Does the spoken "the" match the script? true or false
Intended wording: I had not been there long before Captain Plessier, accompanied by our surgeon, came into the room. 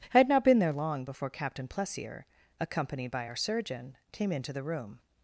true